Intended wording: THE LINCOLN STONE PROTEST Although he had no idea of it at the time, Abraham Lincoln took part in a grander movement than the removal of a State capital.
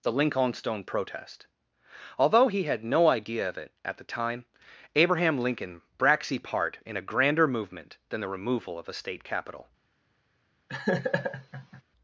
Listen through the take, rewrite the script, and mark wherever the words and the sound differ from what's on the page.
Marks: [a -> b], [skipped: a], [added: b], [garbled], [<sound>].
THE LINCOLN STONE PROTEST Although he had no idea of it at the time, Abraham Lincoln [took -> braxy] part in a grander movement than the removal of a State capital. [laugh]